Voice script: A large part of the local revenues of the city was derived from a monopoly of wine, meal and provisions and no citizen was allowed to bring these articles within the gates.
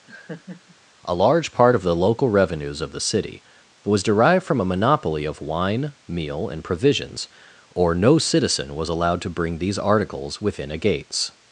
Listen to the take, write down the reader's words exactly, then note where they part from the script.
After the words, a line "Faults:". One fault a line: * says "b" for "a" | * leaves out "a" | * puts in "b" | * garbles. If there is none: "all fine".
A large part of the local revenues of the city was derived from a monopoly of wine, meal and provisions or no citizen was allowed to bring these articles within a gates.
Faults:
* says "or" for "and"
* says "a" for "the"